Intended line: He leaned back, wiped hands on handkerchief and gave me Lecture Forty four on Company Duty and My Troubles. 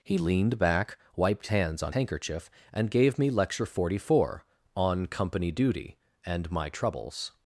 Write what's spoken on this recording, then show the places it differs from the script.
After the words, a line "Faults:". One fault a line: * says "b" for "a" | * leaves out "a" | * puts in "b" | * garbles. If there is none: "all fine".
He leaned back, wiped hands on handkerchief and gave me Lecture Forty four on Company Duty and My Troubles.
Faults:
all fine